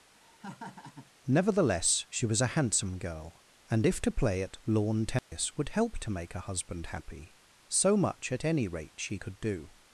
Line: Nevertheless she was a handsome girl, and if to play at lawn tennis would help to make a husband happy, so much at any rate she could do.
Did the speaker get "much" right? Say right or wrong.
right